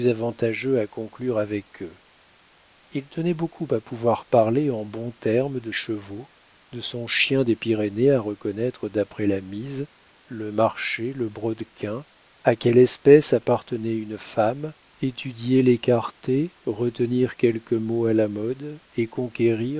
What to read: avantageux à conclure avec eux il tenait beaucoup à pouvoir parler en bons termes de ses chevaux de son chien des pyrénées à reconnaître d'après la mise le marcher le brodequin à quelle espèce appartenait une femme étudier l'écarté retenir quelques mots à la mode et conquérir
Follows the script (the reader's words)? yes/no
no